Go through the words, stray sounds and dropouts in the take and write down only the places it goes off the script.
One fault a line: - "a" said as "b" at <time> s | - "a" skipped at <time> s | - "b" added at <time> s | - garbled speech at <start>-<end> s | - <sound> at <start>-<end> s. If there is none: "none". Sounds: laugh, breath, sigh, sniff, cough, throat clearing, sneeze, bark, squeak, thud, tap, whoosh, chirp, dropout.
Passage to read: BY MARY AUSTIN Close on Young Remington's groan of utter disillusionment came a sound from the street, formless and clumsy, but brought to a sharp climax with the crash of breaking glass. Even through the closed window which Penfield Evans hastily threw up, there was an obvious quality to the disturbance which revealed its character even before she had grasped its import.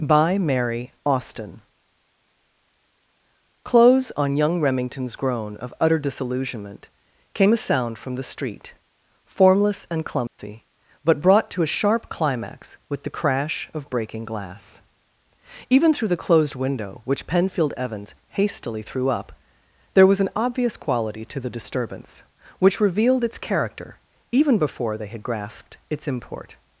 - dropout at 10.3-10.4 s
- "she" said as "they" at 25.0 s